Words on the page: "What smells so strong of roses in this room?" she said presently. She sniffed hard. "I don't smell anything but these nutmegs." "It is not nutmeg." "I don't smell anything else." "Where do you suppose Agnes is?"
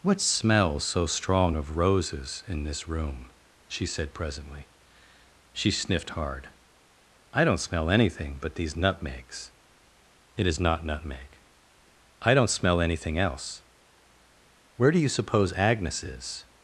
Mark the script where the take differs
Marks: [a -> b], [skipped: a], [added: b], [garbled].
"What smells so strong of roses in this room?" she said presently. She sniffed hard. "I don't smell anything but these nutmegs." "It is not nutmeg." "I don't smell anything else." "Where do you suppose Agnes is?"